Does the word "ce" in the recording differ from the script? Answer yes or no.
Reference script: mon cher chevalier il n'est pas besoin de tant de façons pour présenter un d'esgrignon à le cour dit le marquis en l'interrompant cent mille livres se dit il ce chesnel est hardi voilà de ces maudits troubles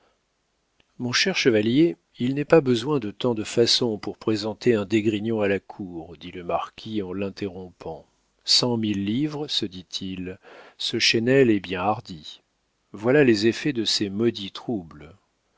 no